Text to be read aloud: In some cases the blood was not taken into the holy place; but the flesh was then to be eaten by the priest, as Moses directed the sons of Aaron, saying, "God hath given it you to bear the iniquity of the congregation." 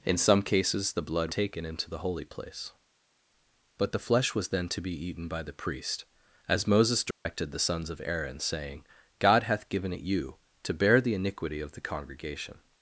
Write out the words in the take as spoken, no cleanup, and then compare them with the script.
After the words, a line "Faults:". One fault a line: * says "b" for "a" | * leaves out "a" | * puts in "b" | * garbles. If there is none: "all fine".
In some cases the blood taken into the holy place; but the flesh was then to be eaten by the priest, as Moses directed the sons of Aaron, saying, "God hath given it you to bear the iniquity of the congregation."
Faults:
* leaves out "was not"